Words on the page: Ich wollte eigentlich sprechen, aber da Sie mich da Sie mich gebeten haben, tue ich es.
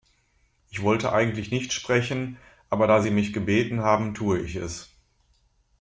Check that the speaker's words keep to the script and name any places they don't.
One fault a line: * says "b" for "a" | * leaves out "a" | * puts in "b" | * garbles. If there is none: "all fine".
* puts in "nicht"
* leaves out "da Sie mich"